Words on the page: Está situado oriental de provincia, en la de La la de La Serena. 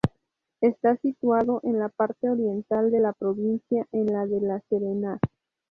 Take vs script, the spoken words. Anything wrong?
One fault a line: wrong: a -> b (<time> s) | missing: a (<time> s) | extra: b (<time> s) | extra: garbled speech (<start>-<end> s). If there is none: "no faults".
extra: en la parte (1.6 s)
extra: la (3.0 s)
missing: la de La (4.6 s)